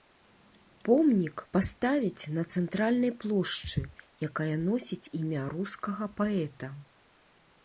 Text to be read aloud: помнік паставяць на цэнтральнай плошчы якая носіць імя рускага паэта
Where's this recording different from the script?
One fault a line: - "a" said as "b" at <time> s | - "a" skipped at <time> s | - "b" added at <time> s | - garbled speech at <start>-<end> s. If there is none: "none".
none